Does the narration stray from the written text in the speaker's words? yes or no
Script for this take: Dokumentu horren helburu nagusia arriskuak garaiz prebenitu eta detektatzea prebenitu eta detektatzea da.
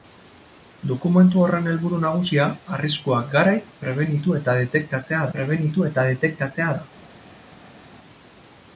no